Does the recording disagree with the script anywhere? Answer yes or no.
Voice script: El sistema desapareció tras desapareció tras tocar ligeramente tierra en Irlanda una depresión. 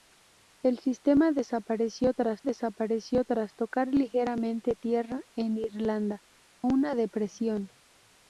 no